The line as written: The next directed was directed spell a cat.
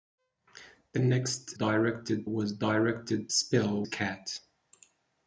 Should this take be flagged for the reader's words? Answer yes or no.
no